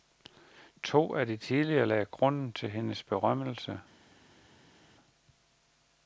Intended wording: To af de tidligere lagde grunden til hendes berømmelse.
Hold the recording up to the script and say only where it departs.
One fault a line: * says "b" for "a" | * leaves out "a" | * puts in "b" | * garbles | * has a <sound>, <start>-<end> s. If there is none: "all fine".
all fine